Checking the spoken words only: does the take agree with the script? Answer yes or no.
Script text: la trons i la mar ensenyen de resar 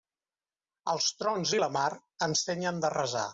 no